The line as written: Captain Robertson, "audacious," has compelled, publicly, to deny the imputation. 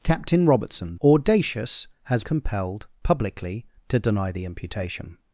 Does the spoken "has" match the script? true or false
true